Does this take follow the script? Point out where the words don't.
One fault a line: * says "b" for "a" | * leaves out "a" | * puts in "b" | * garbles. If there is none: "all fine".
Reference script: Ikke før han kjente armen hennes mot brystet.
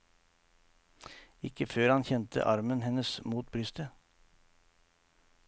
all fine